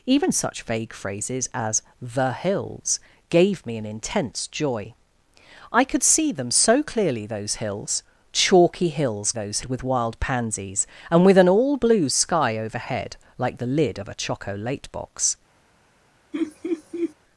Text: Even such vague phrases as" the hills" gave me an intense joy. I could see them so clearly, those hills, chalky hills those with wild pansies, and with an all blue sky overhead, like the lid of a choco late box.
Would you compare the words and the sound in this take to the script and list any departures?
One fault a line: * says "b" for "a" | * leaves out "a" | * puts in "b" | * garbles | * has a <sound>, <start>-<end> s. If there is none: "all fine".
* has a laugh, 16.3-17.1 s